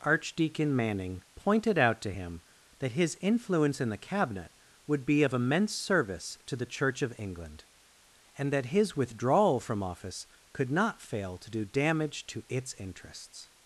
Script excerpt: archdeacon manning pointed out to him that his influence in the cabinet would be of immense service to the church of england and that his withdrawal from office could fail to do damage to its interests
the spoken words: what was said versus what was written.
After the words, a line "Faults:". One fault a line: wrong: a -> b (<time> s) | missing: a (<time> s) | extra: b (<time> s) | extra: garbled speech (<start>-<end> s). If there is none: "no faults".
archdeacon manning pointed out to him that his influence in the cabinet would be of immense service to the church of england and that his withdrawal from office could not fail to do damage to its interests
Faults:
extra: not (10.7 s)